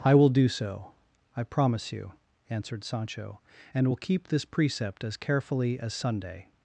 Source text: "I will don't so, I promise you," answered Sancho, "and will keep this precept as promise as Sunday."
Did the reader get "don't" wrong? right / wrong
wrong